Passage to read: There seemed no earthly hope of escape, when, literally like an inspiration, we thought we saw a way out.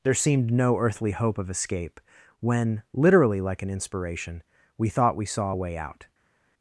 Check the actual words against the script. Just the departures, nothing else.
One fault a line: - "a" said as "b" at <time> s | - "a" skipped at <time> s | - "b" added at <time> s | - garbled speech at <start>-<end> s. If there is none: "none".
none